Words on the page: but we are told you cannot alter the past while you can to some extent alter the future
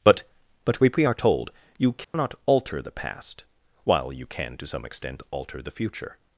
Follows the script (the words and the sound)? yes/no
no